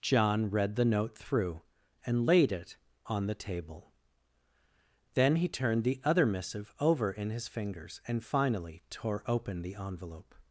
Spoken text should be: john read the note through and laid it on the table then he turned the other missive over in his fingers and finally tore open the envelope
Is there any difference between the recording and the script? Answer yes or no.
no